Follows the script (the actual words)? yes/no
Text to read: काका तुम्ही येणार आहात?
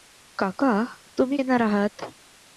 yes